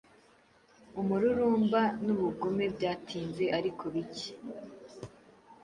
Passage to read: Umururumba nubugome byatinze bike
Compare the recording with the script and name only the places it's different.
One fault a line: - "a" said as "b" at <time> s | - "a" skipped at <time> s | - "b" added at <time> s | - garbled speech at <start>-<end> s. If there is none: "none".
- "ariko" added at 3.6 s